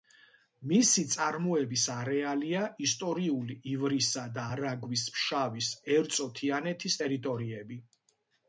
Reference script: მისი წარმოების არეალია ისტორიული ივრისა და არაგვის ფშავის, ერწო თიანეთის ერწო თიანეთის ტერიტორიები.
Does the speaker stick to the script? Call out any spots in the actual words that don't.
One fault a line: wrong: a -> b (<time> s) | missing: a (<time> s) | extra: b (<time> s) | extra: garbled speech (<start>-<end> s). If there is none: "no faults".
missing: ერწო თიანეთის (7.0 s)